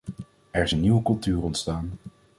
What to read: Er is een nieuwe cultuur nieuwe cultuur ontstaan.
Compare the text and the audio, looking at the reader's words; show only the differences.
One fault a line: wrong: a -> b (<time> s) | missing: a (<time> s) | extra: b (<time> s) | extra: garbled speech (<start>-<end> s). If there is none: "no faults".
missing: nieuwe cultuur (1.4 s)